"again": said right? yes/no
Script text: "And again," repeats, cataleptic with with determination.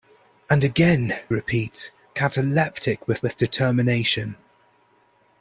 yes